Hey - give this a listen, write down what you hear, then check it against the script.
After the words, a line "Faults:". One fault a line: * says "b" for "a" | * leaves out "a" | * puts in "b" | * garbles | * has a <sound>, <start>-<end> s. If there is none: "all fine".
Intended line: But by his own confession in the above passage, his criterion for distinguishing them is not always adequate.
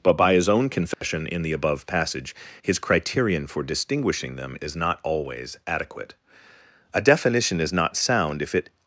But by his own confession in the above passage, his criterion for distinguishing them is not always adequate. A definition is not sound if it
Faults:
* has a dropout, 0.9-1.0 s
* puts in "A definition is not sound if it"